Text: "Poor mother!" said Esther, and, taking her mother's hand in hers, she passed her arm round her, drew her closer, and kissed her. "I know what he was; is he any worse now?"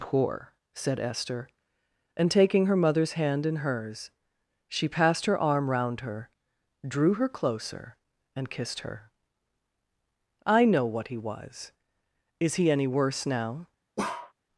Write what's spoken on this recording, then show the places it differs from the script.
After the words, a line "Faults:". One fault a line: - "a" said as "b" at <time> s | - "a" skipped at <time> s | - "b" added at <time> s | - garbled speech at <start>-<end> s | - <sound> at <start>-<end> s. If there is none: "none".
"Poor!" said Esther, and, taking her mother's hand in hers, she passed her arm round her, drew her closer, and kissed her. "I know what he was; is he any worse now?"
Faults:
- "mother" skipped at 0.6 s
- bark at 14.0-14.3 s